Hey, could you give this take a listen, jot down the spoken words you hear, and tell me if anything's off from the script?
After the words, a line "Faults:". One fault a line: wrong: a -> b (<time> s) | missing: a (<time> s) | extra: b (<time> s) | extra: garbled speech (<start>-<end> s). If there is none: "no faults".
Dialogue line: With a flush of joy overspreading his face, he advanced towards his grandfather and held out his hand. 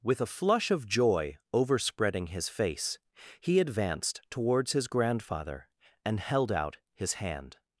With a flush of joy overspreading his face, he advanced towards his grandfather and held out his hand.
Faults:
no faults